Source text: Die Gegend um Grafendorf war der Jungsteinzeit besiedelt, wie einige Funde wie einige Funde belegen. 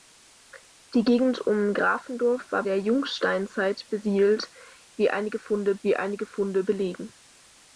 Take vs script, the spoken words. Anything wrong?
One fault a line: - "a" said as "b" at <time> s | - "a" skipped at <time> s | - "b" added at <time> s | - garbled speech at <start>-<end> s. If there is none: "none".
none